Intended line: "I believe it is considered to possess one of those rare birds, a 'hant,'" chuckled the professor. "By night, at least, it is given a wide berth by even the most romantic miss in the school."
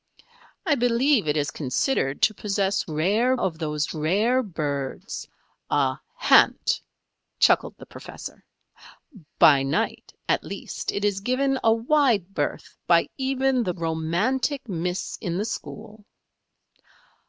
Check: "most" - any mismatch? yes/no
yes